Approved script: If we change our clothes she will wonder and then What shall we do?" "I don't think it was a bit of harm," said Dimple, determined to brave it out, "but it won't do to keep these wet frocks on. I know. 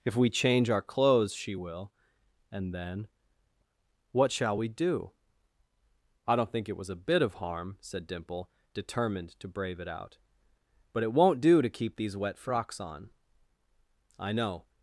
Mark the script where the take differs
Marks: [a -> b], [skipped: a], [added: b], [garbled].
If we change our clothes she will [skipped: wonder] and then What shall we do?" "I don't think it was a bit of harm," said Dimple, determined to brave it out, "but it won't do to keep these wet frocks on. I know.